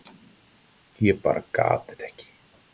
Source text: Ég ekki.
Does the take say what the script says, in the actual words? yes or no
no